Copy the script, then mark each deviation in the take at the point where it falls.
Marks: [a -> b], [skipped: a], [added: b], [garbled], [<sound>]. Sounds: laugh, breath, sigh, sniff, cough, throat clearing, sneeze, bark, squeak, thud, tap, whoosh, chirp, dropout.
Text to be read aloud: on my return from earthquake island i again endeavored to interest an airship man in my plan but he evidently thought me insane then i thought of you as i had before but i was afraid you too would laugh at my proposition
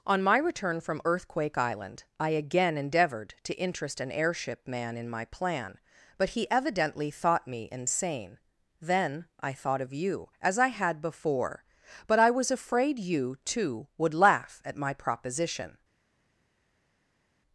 on my return from earthquake island i again endeavored to interest an airship man in my plan but he evidently thought me insane then i thought of you as i had before but i was afraid you too would laugh at my proposition